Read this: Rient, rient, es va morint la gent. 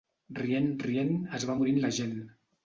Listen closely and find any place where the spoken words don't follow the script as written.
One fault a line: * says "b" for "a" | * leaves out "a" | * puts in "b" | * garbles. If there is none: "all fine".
all fine